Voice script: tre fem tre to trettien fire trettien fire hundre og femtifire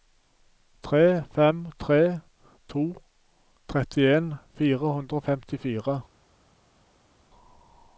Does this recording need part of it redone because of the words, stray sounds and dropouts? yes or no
yes